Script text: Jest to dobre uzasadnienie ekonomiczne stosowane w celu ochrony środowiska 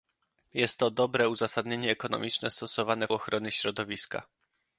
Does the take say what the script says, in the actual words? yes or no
no